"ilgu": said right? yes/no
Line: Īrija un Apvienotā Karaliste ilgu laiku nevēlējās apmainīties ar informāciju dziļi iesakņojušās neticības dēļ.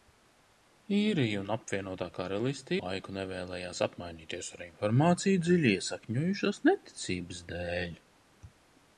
no